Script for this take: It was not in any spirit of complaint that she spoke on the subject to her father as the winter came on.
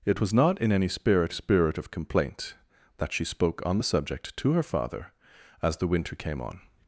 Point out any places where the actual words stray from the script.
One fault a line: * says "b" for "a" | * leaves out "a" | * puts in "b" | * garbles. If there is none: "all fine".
* puts in "spirit"